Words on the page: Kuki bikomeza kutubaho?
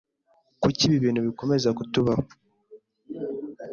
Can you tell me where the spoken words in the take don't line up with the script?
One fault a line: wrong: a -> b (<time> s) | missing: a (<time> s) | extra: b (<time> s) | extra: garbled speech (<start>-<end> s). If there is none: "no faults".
extra: ibi bintu (0.8 s)